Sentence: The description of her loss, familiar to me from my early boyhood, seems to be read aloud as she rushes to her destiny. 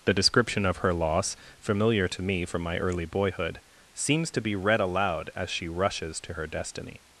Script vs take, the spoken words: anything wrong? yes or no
no